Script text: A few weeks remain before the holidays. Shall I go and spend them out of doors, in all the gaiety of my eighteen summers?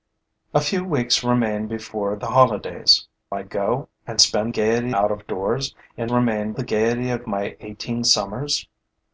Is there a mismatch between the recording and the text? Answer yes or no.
yes